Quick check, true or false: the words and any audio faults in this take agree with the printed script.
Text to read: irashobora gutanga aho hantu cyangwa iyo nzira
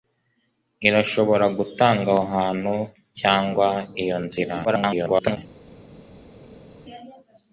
false